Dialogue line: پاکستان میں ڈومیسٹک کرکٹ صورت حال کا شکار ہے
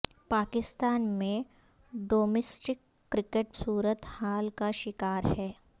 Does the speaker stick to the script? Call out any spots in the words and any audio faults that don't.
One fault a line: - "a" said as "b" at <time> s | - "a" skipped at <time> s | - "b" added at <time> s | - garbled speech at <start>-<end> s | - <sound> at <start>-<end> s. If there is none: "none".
none